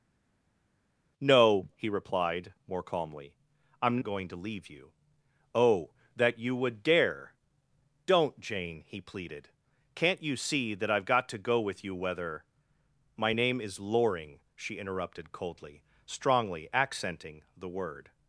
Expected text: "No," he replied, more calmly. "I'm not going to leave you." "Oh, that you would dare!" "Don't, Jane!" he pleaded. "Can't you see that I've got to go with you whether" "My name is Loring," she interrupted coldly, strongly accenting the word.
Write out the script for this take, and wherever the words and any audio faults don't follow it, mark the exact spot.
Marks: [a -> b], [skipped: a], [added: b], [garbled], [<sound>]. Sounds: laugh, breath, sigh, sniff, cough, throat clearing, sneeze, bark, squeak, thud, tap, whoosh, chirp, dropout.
"No," he replied, more calmly. "I'm [skipped: not] going to leave you." "Oh, that you would dare!" "Don't, Jane!" he pleaded. "Can't you see that I've got to go with you whether" "My name is Loring," she interrupted coldly, strongly accenting the word.